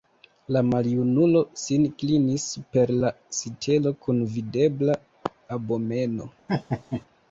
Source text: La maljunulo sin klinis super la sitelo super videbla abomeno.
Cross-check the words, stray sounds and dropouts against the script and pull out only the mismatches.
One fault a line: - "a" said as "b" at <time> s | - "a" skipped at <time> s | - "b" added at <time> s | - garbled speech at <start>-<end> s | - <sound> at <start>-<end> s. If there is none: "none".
- "super" said as "kun" at 4.1 s
- laugh at 6.5-7.1 s